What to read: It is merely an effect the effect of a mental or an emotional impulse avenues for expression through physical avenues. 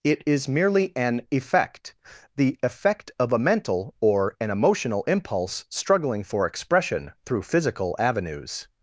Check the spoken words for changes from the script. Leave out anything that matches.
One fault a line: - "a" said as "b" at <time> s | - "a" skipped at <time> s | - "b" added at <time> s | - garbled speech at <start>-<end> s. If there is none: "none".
- "avenues" said as "struggling" at 5.7 s